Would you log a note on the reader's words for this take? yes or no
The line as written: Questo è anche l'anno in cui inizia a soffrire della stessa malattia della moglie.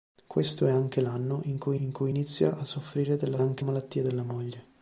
yes